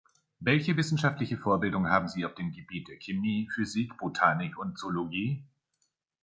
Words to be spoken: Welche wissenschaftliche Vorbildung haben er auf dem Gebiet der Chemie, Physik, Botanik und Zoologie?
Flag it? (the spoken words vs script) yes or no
yes